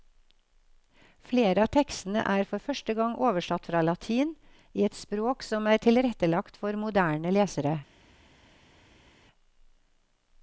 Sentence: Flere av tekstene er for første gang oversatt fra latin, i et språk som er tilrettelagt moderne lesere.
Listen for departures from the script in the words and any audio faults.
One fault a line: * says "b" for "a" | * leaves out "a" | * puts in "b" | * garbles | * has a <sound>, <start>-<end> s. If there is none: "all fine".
* puts in "for"